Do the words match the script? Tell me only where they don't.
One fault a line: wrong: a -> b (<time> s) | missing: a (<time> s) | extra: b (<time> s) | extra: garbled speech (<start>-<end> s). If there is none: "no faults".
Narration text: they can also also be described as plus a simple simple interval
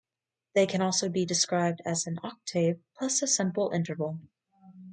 missing: also (1.1 s)
extra: an octave (2.1 s)
missing: simple (3.7 s)